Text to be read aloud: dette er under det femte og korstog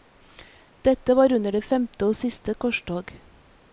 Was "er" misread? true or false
true